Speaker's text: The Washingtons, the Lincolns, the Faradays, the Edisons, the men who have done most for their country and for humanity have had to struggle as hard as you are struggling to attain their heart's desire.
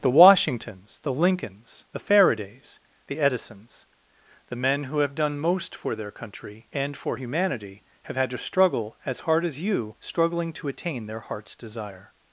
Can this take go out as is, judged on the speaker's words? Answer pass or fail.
fail